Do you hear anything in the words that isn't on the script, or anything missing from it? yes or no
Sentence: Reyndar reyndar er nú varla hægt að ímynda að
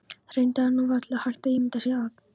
yes